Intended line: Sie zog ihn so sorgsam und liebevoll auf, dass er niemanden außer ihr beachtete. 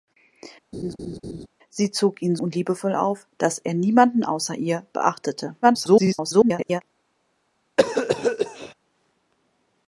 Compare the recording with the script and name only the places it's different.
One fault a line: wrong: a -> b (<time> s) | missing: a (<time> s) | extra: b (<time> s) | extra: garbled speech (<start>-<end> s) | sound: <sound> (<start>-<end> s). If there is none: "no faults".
sound: laugh (0.7-1.5 s)
missing: so sorgsam (2.4 s)
extra: garbled speech (5.6-6.8 s)
sound: cough (7.8-8.7 s)